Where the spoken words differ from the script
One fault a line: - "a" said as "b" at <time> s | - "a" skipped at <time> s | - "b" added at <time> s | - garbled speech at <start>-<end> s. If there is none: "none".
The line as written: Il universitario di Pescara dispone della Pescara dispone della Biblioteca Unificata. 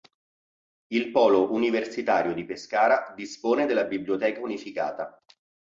- "polo" added at 1.1 s
- "Pescara dispone della" skipped at 3.8 s